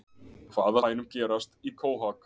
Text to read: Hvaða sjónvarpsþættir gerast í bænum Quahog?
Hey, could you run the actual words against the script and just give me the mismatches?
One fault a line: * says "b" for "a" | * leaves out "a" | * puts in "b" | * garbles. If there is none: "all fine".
* says "bænum" for "sjónvarpsþættir"
* leaves out "bænum"